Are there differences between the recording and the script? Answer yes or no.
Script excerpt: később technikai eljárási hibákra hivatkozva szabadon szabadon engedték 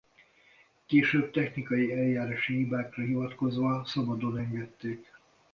yes